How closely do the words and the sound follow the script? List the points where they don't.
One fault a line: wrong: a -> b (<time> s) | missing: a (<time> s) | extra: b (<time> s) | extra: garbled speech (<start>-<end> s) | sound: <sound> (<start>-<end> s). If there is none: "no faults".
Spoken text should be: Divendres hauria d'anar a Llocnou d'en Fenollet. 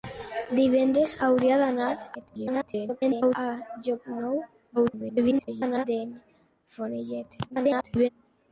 extra: garbled speech (2.1-3.4 s)
extra: garbled speech (4.8-5.8 s)
extra: garbled speech (7.5-8.1 s)